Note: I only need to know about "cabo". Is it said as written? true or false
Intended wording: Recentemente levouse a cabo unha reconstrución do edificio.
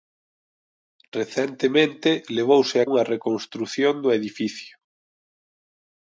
false